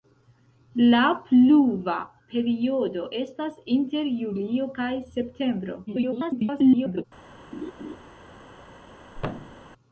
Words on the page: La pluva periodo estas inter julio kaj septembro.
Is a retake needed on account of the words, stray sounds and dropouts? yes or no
yes